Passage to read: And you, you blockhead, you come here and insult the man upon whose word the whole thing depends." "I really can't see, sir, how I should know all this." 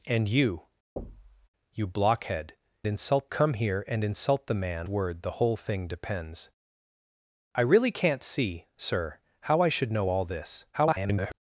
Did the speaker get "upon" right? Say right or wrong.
wrong